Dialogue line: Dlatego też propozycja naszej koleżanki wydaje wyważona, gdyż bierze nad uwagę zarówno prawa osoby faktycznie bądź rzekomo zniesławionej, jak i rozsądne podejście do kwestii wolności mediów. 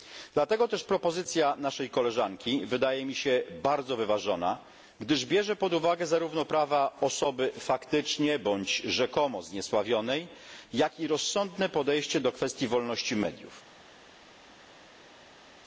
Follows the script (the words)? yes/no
no